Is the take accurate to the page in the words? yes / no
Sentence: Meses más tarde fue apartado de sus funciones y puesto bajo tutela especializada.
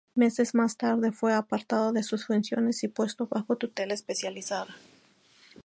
yes